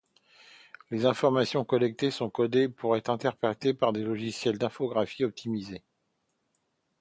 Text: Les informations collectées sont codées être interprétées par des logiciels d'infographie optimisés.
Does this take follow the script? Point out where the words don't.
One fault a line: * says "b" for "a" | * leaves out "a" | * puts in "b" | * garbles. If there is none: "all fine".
* puts in "pour"